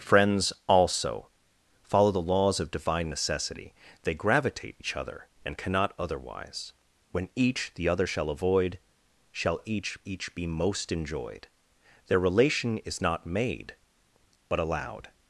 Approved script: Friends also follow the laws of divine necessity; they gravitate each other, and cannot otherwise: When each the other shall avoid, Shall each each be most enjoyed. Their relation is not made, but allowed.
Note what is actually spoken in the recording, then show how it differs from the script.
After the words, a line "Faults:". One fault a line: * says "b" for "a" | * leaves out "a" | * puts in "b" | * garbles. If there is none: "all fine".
Friends also follow the laws of divine necessity; they gravitate each other, and cannot otherwise: When each the other shall avoid, Shall each each be most enjoyed. Their relation is not made, but allowed.
Faults:
all fine